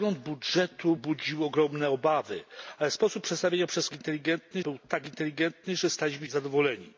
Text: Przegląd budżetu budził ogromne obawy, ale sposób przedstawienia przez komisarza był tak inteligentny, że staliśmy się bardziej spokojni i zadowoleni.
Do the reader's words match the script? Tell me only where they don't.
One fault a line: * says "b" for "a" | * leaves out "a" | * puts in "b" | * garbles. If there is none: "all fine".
* says "inteligentny" for "komisarza"
* leaves out "się bardziej spokojni"